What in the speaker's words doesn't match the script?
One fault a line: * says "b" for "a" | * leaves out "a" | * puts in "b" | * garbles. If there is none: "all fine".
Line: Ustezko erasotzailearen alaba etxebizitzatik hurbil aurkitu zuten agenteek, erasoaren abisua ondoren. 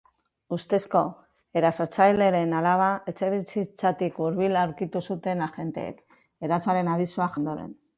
all fine